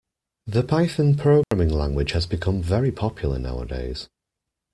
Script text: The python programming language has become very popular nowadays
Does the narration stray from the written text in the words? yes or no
no